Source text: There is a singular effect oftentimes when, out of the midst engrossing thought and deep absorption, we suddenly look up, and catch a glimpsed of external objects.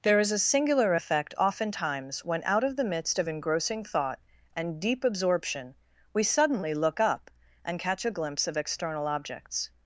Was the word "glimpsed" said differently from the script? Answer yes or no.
yes